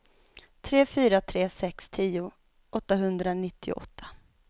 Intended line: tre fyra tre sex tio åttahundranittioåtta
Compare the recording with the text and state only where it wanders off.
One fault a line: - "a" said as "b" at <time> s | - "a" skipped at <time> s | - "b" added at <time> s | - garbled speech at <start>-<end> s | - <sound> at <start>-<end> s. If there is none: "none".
none